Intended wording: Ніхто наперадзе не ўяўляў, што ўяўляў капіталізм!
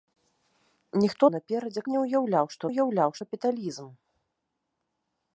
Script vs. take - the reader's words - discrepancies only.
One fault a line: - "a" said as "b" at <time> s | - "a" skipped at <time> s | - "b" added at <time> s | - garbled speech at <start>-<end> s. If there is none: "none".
none